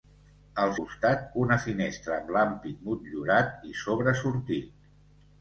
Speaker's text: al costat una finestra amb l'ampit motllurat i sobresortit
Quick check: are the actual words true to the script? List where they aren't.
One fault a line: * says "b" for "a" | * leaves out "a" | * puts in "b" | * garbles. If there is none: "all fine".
all fine